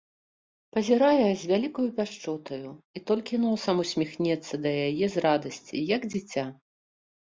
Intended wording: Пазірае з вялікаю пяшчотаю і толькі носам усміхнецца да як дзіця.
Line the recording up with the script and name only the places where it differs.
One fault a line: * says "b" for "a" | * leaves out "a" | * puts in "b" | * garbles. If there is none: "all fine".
* puts in "яе з радасці"